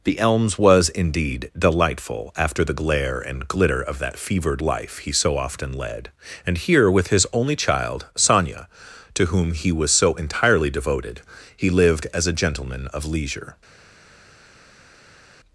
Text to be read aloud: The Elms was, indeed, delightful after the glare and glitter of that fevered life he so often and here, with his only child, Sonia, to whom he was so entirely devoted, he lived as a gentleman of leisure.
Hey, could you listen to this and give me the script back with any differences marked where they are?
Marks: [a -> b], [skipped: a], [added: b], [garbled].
The Elms was, indeed, delightful after the glare and glitter of that fevered life he so often [added: led] and here, with his only child, Sonia, to whom he was so entirely devoted, he lived as a gentleman of leisure.